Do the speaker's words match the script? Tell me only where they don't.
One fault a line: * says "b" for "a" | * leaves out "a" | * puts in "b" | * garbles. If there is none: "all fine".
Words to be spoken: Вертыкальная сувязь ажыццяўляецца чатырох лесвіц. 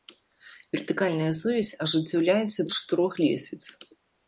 all fine